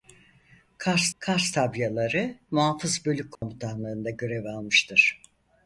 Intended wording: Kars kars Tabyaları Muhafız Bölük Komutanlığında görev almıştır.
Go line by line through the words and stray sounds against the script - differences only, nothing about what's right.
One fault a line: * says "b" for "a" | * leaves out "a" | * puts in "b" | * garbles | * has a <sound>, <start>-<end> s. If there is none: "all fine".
* has a dropout, 3.4-3.4 s